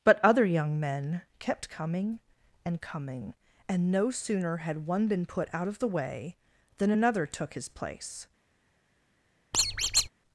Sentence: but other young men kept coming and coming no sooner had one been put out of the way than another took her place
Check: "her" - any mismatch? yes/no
yes